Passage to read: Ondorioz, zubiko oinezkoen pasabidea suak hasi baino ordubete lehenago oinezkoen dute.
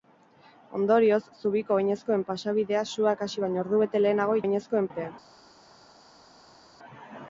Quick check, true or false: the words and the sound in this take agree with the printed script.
true